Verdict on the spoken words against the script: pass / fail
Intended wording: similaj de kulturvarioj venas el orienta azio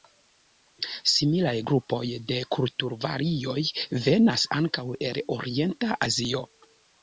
fail